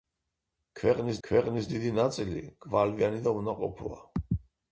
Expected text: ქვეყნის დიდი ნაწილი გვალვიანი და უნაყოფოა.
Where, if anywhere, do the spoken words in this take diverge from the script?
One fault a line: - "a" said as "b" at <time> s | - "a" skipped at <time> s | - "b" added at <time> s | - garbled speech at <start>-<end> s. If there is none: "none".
- "ქვეყნის" added at 1.3 s